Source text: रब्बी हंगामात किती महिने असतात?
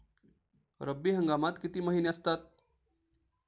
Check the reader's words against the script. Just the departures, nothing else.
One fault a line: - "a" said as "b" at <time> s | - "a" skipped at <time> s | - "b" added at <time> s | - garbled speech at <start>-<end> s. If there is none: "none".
none